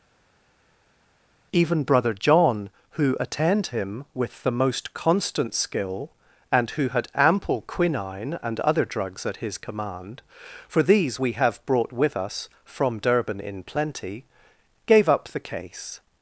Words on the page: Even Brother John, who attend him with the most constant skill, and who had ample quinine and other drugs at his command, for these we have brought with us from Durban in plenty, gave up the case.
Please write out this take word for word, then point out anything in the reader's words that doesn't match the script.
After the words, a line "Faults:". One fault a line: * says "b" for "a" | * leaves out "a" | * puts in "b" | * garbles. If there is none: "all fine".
Even Brother John, who attend him with the most constant skill, and who had ample quinine and other drugs at his command, for these we have brought with us from Durban in plenty, gave up the case.
Faults:
all fine